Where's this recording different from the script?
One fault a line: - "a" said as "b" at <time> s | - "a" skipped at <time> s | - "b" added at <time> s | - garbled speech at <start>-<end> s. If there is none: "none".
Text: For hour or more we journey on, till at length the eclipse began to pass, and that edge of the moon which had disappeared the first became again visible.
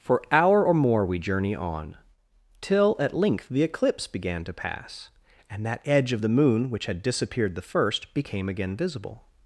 none